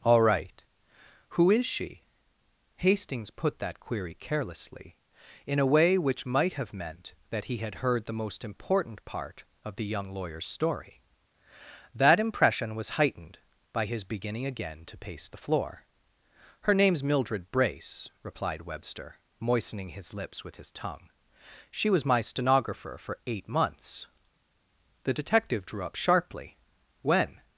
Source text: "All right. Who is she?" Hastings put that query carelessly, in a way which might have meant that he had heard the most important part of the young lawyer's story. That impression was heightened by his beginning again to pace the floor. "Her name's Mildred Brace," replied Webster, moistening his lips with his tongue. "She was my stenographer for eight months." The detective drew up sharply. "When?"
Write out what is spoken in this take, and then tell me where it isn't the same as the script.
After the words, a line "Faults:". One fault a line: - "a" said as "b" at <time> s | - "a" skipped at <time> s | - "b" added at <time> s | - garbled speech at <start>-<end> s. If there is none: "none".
"All right. Who is she?" Hastings put that query carelessly, in a way which might have meant that he had heard the most important part of the young lawyer's story. That impression was heightened by his beginning again to pace the floor. "Her name's Mildred Brace," replied Webster, moistening his lips with his tongue. "She was my stenographer for eight months." The detective drew up sharply. "When?"
Faults:
none